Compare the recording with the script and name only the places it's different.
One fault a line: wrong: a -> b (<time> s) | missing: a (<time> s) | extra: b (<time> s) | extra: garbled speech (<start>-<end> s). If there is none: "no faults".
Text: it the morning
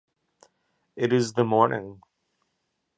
extra: is (1.1 s)